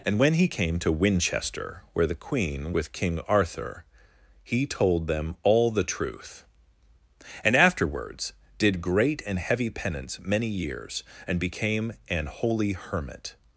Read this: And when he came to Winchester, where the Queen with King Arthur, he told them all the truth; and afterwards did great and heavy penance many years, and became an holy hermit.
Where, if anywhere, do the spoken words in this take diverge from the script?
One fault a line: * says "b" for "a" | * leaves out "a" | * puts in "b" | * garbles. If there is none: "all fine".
all fine